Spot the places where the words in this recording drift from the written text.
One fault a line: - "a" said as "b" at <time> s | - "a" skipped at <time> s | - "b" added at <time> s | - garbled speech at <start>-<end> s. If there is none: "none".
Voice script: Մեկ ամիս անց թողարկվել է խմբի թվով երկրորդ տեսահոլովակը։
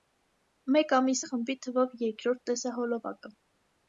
- "անց թողարկվել" skipped at 1.2 s